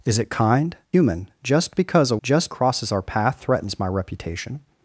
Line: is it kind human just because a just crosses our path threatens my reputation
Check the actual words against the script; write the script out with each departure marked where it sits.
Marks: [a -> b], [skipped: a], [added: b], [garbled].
is it kind human just because a just crosses our path threatens my reputation